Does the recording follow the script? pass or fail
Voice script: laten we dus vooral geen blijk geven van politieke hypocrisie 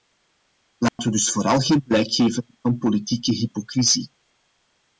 pass